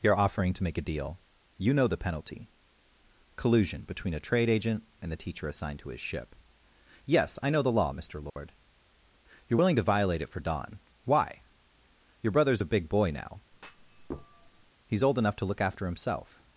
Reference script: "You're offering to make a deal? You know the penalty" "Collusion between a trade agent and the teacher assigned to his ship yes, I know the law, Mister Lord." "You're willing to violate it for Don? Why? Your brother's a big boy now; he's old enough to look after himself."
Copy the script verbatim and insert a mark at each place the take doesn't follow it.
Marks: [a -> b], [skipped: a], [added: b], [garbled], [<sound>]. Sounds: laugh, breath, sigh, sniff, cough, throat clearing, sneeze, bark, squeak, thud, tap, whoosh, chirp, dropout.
"You're offering to make a deal? You know the penalty" "Collusion between a trade agent and the teacher assigned to his ship yes, I know the law, Mister Lord." [dropout] "You're willing to violate it for Don? Why? Your brother's a big boy now; [thud] he's old enough to look after himself."